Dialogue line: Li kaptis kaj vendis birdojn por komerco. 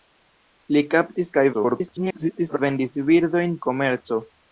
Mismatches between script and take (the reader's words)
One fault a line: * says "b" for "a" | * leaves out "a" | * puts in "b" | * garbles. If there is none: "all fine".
* garbles
* leaves out "por"